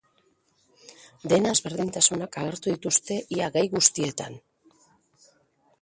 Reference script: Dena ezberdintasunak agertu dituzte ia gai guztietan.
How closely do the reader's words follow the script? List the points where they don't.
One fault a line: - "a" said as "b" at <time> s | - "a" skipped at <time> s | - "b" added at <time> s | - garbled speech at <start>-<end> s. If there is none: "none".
none